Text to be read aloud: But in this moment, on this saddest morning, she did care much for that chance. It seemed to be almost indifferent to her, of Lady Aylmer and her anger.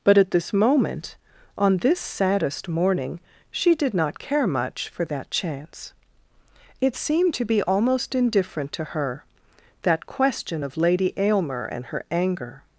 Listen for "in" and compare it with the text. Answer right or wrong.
wrong